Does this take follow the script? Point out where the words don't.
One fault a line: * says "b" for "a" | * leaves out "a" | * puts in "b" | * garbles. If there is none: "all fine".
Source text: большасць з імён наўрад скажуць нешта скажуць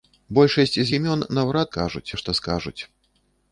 all fine